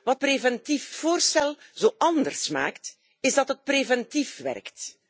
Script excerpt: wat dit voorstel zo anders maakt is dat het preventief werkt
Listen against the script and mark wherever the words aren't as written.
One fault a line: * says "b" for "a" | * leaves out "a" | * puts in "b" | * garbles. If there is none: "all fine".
* says "preventief" for "dit"